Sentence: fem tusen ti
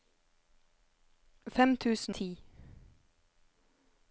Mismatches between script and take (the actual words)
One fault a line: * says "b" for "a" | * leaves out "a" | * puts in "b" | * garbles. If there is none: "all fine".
all fine